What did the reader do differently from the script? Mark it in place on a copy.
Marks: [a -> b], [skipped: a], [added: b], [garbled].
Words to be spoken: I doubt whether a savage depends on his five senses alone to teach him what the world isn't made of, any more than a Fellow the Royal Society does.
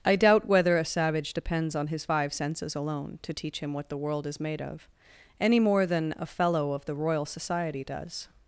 I doubt whether a savage depends on his five senses alone to teach him what the world [isn't -> is] made of, any more than a Fellow [added: of] the Royal Society does.